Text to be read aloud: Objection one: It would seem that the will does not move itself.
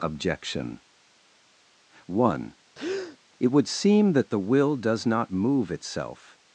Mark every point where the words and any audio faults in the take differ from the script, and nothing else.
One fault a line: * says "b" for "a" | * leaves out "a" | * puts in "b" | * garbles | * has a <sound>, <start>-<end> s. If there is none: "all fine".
* has a breath, 2.7-3.2 s